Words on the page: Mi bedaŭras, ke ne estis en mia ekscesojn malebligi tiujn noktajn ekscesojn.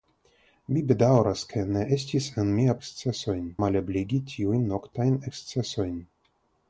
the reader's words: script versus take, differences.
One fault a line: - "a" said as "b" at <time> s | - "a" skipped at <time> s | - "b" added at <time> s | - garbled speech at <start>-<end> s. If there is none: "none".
none